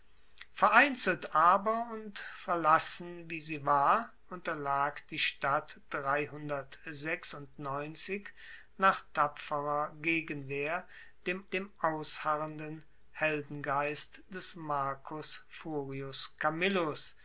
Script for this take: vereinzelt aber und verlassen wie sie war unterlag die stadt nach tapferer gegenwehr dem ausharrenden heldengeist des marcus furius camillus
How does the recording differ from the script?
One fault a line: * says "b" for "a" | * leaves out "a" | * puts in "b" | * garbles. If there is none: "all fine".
* puts in "dem"